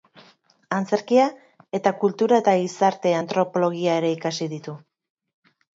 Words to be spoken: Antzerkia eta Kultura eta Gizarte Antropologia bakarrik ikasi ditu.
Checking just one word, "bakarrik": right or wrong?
wrong